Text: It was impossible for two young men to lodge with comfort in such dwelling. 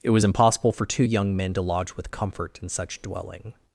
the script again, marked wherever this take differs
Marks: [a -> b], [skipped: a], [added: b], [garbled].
It was impossible for two young men to lodge with comfort in such dwelling.